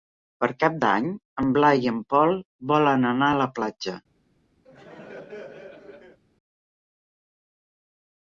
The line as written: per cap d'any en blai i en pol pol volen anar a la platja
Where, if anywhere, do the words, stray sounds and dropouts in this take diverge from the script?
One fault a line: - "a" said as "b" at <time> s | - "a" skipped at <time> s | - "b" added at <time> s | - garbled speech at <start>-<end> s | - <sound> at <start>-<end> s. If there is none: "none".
- "pol" skipped at 2.3 s
- laugh at 4.6-6.2 s